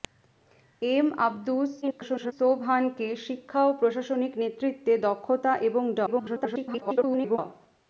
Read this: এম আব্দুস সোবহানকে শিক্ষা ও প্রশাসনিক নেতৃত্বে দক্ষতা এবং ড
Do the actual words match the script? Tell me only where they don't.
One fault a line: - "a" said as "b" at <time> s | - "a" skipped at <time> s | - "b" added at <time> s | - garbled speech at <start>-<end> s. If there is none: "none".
- garbled speech at 1.8-2.3 s
- garbled speech at 6.1-7.4 s